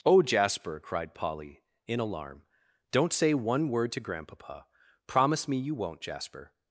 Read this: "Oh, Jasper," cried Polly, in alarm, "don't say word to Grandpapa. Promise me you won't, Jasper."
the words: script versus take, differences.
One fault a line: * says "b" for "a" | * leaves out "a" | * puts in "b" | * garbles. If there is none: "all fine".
* puts in "one"